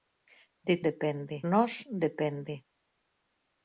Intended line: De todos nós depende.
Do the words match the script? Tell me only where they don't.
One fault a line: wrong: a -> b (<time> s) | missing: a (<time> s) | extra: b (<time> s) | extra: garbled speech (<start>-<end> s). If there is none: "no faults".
wrong: todos -> depende (0.9 s)